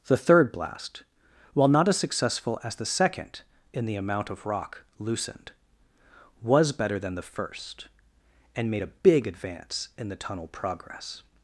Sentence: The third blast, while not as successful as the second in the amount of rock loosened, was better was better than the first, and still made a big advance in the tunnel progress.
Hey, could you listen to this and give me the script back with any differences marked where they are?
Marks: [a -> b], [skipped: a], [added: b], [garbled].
The third blast, while not as successful as the second in the amount of rock loosened, was better [skipped: was better] than the first, and [skipped: still] made a big advance in the tunnel progress.